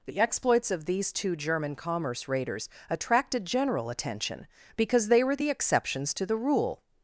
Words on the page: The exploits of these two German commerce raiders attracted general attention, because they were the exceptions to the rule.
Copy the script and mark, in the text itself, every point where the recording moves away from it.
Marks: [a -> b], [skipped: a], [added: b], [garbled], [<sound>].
The exploits of these two German commerce raiders attracted general attention, because they were the exceptions to the rule.